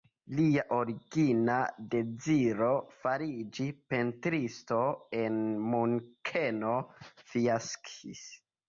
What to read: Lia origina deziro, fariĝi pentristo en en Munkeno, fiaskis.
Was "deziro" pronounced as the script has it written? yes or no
yes